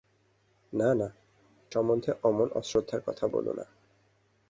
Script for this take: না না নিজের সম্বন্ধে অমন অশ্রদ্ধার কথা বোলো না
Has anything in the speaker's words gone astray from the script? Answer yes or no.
yes